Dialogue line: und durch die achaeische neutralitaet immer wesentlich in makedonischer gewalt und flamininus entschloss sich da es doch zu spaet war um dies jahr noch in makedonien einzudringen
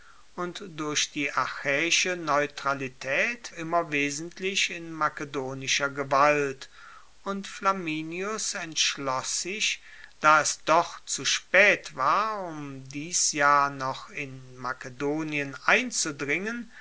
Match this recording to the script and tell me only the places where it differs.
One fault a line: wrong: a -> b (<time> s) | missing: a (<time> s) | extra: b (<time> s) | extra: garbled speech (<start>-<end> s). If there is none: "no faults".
no faults